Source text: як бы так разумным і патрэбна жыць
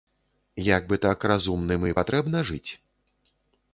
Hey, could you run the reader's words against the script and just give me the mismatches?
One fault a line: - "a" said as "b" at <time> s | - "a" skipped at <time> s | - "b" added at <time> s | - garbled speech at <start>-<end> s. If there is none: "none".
none